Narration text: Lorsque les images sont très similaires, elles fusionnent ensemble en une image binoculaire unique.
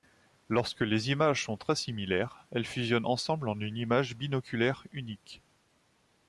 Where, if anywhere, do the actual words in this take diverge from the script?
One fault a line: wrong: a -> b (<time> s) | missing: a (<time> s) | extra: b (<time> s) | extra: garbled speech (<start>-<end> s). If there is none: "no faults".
no faults